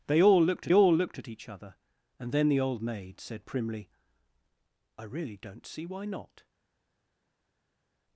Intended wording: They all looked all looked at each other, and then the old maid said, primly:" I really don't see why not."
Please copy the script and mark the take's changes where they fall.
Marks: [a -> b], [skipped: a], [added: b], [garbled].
They all looked all looked at each other, and then the old maid said, primly:" I really don't see why not."